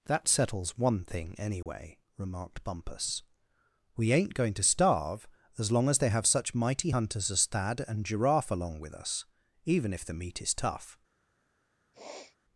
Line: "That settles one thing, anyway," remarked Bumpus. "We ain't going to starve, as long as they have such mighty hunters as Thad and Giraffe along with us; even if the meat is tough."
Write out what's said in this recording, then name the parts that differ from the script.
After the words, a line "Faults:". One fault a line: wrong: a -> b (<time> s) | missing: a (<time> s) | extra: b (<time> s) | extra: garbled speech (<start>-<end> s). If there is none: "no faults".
"That settles one thing, anyway," remarked Bumpus. "We ain't going to starve, as long as they have such mighty hunters as Thad and Giraffe along with us; even if the meat is tough."
Faults:
no faults